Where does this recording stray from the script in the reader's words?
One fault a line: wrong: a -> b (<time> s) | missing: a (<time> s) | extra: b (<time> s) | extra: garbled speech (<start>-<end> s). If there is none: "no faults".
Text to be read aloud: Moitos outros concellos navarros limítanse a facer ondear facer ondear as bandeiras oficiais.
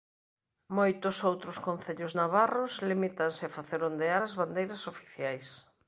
missing: facer ondear (4.2 s)